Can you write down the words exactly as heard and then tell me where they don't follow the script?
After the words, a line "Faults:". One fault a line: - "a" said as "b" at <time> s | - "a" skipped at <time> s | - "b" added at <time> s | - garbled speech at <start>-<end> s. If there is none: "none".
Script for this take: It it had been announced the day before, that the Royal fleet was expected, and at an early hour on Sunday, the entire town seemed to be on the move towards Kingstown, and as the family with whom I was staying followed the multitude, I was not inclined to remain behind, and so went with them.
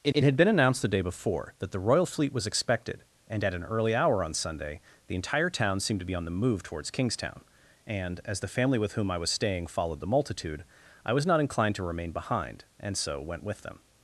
It it had been announced the day before, that the Royal fleet was expected, and at an early hour on Sunday, the entire town seemed to be on the move towards Kingstown, and as the family with whom I was staying followed the multitude, I was not inclined to remain behind, and so went with them.
Faults:
none